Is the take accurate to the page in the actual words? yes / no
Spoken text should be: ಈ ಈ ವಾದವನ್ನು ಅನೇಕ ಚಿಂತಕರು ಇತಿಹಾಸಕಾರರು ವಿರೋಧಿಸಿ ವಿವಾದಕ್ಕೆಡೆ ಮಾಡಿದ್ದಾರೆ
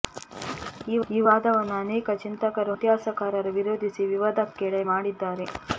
yes